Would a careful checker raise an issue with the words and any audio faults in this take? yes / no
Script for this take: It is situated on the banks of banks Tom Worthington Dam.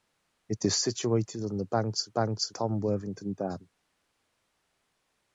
no